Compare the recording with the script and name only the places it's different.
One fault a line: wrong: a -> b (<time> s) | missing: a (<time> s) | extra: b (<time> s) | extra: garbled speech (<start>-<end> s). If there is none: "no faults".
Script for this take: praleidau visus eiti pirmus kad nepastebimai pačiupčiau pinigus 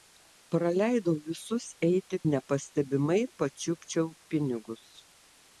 missing: pirmus kad (2.2 s)